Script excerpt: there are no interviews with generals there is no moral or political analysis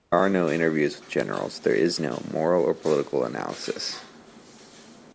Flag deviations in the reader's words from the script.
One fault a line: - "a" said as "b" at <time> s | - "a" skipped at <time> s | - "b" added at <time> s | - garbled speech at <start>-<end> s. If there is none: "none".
none